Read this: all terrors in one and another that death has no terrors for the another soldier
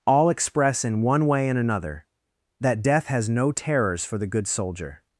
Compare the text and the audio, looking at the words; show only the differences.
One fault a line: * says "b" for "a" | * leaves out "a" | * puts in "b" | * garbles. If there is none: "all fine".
* says "express" for "terrors"
* puts in "way"
* says "good" for "another"